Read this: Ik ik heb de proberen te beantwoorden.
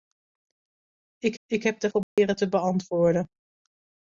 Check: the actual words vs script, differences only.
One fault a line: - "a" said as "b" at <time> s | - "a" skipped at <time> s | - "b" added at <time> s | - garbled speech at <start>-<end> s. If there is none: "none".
none